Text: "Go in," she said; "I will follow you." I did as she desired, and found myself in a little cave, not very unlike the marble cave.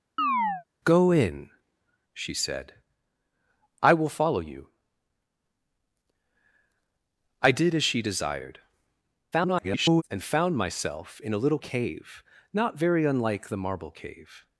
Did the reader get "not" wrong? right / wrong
right